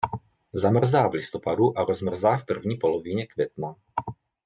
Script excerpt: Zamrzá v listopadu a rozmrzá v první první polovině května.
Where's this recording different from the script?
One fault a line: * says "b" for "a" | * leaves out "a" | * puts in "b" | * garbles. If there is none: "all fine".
* leaves out "první"